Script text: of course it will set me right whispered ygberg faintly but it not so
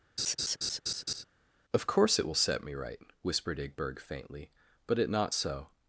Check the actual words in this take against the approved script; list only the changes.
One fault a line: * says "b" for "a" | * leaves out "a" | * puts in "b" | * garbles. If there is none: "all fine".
all fine